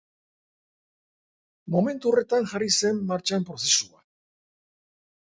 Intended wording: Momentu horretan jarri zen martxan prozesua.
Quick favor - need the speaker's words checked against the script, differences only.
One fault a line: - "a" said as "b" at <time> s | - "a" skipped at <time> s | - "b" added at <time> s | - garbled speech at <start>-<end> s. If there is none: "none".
none